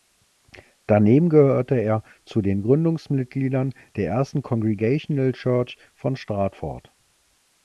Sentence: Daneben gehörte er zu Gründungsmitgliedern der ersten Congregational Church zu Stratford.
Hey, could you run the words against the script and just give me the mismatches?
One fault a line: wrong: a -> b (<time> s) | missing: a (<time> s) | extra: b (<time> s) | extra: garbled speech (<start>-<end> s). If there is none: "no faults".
extra: den (2.4 s)
wrong: zu -> von (5.9 s)